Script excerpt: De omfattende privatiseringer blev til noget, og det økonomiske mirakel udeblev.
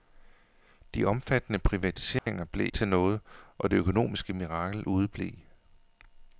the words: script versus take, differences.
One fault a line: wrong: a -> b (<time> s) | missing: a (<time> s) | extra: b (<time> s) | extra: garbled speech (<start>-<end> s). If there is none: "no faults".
no faults